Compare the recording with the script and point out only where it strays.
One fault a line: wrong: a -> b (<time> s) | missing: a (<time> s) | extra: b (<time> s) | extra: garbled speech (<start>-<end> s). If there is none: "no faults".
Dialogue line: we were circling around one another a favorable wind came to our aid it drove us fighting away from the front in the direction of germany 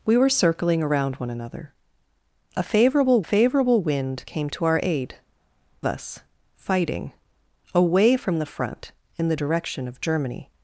extra: favorable (3.2 s)
missing: it drove (5.1 s)